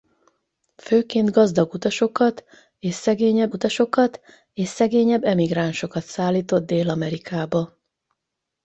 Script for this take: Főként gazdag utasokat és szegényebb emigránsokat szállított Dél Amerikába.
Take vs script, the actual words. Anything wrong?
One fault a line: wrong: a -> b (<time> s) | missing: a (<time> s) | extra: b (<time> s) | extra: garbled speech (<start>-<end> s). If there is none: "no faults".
extra: utasokat és szegényebb (3.5 s)